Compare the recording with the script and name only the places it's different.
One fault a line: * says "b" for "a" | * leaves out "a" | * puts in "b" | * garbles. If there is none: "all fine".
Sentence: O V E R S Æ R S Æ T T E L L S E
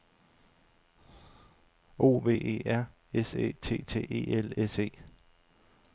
* leaves out "R S Æ"
* leaves out "L"